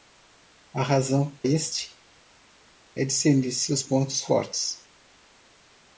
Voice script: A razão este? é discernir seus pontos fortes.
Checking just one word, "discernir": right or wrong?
right